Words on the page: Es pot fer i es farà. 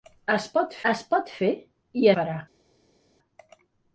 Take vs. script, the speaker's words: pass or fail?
fail